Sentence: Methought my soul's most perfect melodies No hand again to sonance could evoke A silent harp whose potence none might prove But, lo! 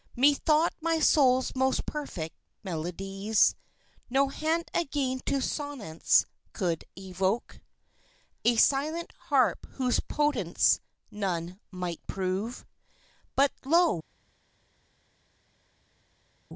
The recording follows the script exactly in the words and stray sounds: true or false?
true